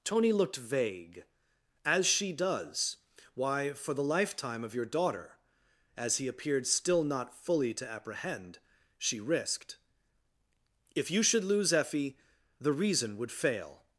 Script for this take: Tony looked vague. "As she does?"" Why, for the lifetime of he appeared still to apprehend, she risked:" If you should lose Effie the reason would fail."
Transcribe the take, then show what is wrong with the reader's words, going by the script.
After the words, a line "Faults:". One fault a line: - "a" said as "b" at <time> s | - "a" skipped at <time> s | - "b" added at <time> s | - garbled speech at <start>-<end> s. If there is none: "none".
Tony looked vague. "As she does?"" Why, for the lifetime of your daughter." As he appeared still not fully to apprehend, she risked:" If you should lose Effie the reason would fail."
Faults:
- "your daughter As" added at 4.7 s
- "not fully" added at 7.0 s